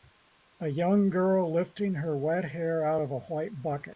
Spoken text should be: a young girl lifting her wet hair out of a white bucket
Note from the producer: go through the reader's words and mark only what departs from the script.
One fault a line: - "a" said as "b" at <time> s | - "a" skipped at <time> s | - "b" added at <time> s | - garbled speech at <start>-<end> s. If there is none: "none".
none